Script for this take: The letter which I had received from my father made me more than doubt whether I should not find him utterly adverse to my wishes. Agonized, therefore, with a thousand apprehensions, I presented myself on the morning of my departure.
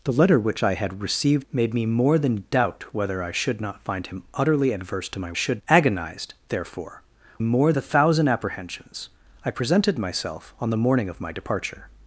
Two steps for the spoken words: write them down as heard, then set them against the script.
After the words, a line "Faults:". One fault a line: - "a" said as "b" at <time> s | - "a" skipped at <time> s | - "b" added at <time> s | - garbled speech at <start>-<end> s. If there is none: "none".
The letter which I had received made me more than doubt whether I should not find him utterly adverse to my should. Agonized, therefore, more a thousand apprehensions, I presented myself on the morning of my departure.
Faults:
- "from my father" skipped at 1.5 s
- "wishes" said as "should" at 5.3 s
- "with" said as "more" at 7.4 s